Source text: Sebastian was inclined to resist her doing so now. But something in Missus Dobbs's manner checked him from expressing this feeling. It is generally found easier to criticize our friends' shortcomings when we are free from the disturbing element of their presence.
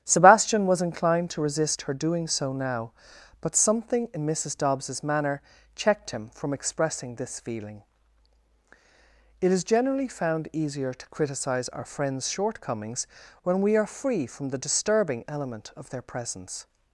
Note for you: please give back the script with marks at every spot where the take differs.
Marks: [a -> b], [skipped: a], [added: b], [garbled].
Sebastian was inclined to resist her doing so now. But something in Missus Dobbs's manner checked him from expressing this feeling. It is generally found easier to criticize our friends' shortcomings when we are free from the disturbing element of their presence.